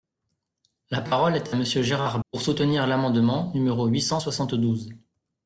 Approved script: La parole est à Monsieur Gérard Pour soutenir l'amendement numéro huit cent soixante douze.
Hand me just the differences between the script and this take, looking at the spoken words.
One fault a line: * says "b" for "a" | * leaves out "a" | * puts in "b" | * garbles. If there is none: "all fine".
all fine